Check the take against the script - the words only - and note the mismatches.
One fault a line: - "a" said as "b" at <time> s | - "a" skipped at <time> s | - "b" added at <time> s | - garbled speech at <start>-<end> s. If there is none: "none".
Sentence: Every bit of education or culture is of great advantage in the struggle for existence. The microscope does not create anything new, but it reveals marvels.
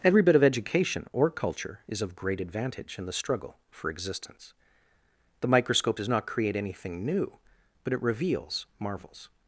none